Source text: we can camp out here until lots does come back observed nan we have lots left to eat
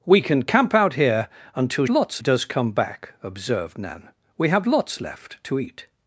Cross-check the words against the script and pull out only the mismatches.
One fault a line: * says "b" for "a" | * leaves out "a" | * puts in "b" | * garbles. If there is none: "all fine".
all fine